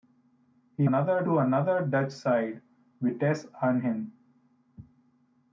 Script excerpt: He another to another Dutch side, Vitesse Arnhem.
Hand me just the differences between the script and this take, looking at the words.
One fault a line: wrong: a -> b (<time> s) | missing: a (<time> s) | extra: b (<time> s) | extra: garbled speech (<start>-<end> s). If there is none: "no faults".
no faults